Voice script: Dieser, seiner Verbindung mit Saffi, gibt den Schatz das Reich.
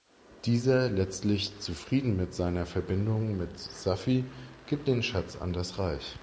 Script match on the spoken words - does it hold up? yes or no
no